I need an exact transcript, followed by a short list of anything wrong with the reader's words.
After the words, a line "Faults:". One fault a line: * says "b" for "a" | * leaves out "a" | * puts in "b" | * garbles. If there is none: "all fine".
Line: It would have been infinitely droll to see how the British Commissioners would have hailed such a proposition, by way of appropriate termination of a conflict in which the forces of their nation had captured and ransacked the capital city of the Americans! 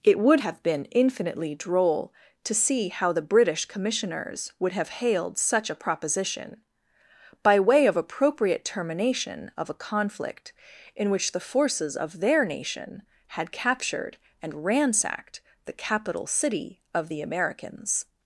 It would have been infinitely droll to see how the British Commissioners would have hailed such a proposition, by way of appropriate termination of a conflict in which the forces of their nation had captured and ransacked the capital city of the Americans!
Faults:
all fine